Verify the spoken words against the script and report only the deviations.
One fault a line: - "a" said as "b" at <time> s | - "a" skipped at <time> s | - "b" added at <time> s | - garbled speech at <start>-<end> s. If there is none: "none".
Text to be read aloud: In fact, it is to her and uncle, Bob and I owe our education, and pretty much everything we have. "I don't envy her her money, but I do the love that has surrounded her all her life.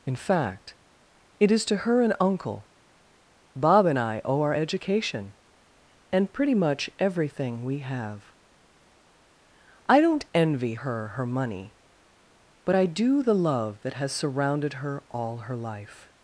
none